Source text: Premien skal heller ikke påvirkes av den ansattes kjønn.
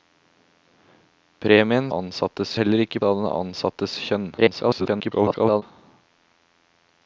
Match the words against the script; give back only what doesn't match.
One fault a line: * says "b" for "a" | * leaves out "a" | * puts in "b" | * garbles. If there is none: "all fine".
* says "ansattes" for "skal"
* leaves out "påvirkes"
* garbles